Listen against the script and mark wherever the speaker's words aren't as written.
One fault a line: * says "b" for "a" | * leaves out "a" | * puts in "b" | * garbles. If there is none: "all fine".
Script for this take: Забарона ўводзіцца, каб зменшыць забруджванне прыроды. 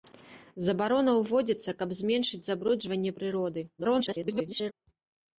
* garbles